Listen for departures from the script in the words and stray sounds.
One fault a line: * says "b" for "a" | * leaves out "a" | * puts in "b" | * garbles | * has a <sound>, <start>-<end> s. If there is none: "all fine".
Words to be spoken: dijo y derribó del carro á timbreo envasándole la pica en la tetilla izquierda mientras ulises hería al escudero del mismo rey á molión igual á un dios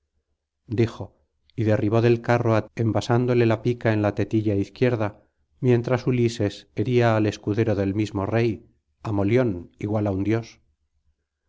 * leaves out "timbreo"